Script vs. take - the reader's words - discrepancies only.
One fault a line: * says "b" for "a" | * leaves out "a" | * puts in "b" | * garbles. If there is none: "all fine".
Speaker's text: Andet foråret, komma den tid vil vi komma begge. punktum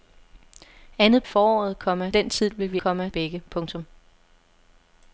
all fine